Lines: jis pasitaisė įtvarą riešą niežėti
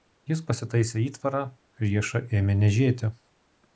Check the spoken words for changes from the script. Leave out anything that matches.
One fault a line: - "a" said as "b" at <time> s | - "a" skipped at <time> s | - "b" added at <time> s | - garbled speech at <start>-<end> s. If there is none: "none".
- "ėmė" added at 2.4 s